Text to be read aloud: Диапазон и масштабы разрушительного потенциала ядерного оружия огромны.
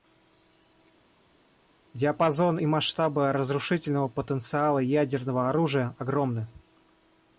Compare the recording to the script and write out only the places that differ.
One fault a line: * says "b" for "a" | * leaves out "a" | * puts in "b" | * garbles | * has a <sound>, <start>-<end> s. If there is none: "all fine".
all fine